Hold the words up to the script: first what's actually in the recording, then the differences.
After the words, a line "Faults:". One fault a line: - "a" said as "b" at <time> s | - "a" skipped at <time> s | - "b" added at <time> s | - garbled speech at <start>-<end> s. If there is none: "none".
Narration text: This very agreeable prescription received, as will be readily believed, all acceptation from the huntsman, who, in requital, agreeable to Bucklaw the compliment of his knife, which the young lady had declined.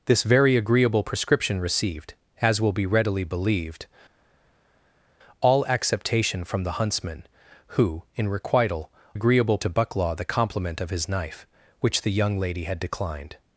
This very agreeable prescription received, as will be readily believed, all acceptation from the huntsman, who, in requital, agreeable to Bucklaw the compliment of his knife, which the young lady had declined.
Faults:
none